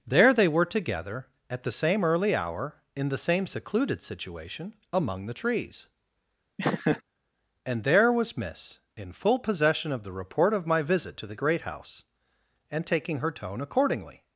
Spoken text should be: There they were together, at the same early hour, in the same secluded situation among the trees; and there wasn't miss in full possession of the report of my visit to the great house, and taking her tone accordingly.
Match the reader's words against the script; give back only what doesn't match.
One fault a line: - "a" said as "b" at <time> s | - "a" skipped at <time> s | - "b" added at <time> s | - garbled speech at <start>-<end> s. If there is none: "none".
- "wasn't" said as "was" at 8.1 s